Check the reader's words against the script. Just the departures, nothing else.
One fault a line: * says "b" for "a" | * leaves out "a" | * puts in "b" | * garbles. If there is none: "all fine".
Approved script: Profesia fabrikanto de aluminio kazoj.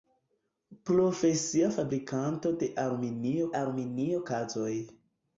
* puts in "aluminio"